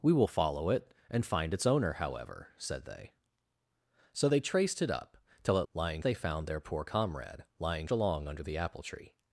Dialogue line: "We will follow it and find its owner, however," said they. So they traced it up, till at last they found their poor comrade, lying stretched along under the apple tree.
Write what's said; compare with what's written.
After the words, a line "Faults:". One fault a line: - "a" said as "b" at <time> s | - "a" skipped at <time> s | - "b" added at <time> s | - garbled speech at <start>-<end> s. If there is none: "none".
"We will follow it and find its owner, however," said they. So they traced it up, till at lying they found their poor comrade, lying along under the apple tree.
Faults:
- "last" said as "lying" at 5.7 s
- "stretched" skipped at 7.9 s